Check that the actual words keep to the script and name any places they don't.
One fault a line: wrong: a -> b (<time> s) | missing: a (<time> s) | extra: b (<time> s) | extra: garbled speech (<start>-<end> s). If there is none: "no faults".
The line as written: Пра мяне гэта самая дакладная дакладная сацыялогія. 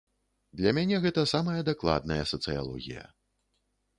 wrong: Пра -> Для (0.6 s)
missing: дакладная (2.2 s)